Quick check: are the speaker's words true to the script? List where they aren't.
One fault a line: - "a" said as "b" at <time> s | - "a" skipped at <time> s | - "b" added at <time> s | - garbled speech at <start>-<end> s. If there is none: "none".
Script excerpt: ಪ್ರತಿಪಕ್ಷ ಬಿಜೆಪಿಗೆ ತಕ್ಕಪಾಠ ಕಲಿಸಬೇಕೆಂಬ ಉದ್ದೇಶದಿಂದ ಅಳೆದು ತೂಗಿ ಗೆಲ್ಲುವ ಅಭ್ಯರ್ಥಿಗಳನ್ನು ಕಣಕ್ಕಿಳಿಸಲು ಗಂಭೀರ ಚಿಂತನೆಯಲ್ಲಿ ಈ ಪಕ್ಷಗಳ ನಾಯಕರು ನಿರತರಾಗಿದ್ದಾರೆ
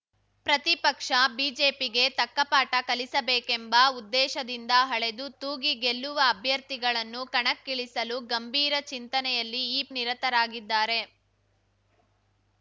- "ಪಕ್ಷಗಳ ನಾಯಕರು" skipped at 9.8 s